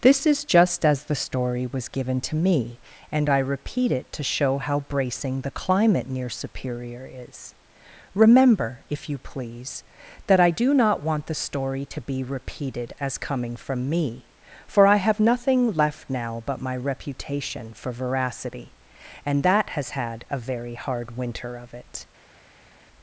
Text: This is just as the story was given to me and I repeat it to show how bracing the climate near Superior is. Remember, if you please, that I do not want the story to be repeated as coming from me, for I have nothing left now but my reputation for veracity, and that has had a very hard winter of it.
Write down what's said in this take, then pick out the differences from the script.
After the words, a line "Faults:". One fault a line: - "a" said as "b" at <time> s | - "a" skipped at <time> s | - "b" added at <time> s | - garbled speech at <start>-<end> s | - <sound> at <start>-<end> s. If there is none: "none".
This is just as the story was given to me and I repeat it to show how bracing the climate near Superior is. Remember, if you please, that I do not want the story to be repeated as coming from me, for I have nothing left now but my reputation for veracity, and that has had a very hard winter of it.
Faults:
none